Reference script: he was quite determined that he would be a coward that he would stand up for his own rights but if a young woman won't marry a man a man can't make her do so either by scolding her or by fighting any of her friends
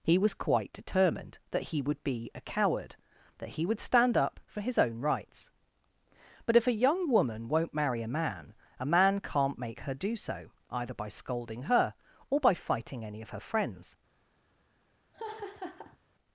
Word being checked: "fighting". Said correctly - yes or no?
yes